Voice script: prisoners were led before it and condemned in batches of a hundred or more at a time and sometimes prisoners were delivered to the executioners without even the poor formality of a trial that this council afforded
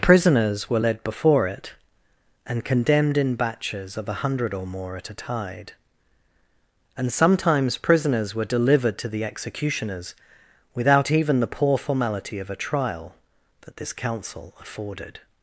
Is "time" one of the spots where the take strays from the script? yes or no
yes